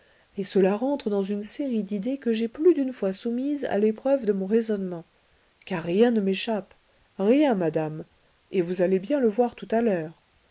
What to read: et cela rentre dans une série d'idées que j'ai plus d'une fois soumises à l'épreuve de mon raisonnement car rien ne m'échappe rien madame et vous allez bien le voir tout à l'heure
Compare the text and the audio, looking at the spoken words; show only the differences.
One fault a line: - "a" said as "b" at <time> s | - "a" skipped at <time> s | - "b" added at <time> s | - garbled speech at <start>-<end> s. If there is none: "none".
none